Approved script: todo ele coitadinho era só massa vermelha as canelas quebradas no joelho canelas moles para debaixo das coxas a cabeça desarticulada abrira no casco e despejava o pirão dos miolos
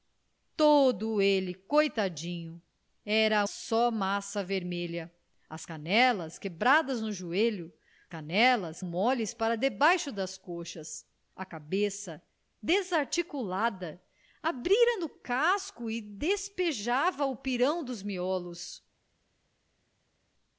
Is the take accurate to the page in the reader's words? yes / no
yes